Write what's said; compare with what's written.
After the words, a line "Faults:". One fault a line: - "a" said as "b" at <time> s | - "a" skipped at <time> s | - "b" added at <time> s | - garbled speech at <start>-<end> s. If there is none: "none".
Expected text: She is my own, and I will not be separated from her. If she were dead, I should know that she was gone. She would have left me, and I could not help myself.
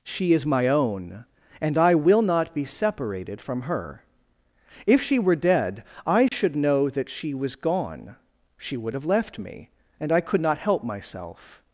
She is my own, and I will not be separated from her. If she were dead, I should know that she was gone. She would have left me, and I could not help myself.
Faults:
none